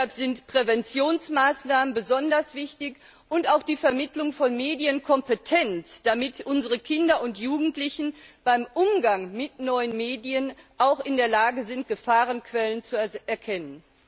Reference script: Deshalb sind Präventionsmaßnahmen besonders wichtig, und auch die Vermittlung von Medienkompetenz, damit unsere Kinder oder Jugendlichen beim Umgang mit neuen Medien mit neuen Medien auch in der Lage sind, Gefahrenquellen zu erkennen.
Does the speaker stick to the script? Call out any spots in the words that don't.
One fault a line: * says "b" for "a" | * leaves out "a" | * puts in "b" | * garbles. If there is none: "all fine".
* says "und" for "oder"
* leaves out "mit neuen Medien"